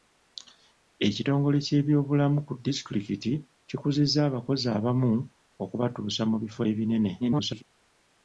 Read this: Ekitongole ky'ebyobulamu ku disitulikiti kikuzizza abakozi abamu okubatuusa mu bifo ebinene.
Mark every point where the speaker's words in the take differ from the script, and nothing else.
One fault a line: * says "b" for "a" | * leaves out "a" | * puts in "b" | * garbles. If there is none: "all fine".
* garbles